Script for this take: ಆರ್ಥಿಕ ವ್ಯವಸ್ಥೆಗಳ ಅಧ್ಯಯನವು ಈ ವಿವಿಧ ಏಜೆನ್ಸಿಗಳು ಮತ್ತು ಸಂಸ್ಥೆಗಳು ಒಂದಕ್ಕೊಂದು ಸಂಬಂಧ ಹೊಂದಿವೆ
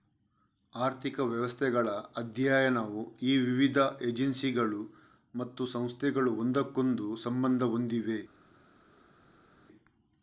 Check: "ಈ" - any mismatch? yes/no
no